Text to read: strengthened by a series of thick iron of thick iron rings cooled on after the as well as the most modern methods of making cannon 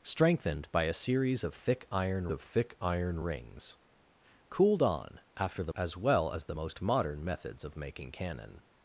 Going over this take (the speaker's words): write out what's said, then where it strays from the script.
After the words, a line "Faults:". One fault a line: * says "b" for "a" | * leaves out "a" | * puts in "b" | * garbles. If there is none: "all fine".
strengthened by a series of thick iron of thick iron rings cooled on after the as well as the most modern methods of making cannon
Faults:
all fine